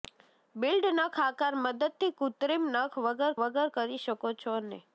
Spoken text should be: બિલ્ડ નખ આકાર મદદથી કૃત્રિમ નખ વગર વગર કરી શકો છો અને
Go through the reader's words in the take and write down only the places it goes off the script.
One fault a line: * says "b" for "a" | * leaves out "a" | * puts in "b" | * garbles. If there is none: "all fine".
all fine